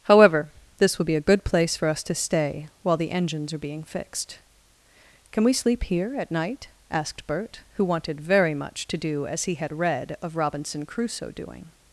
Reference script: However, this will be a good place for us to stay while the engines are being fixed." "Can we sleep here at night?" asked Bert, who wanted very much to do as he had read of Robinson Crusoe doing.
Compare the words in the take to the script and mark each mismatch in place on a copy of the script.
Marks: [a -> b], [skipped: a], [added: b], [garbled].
However, this will be a good place for us to stay while the engines are being fixed." "Can we sleep here at night?" asked Bert, who wanted very much to do as he had read of Robinson Crusoe doing.